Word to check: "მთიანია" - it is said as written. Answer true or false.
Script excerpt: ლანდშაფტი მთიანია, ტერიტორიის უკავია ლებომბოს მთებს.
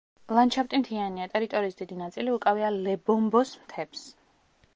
true